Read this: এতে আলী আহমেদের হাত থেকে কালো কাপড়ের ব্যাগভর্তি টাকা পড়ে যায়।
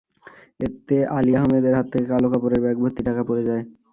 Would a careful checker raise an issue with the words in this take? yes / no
no